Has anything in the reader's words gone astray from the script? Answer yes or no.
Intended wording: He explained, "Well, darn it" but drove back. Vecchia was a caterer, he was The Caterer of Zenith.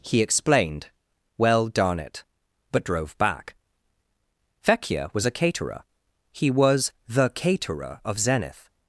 no